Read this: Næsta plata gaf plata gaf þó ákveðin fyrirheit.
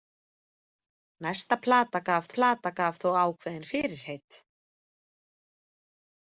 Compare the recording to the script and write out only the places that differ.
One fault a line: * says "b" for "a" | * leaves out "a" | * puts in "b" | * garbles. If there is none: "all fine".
all fine